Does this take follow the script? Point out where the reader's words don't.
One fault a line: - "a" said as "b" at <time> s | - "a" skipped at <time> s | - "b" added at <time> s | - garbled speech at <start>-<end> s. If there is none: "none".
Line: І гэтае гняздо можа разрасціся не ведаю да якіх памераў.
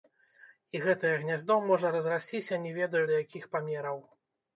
none